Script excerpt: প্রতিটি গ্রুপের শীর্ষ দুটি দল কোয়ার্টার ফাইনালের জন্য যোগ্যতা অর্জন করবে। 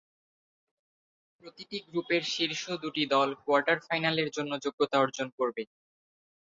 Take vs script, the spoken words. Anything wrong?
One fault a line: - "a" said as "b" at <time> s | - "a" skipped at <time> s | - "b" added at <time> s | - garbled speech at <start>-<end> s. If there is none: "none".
none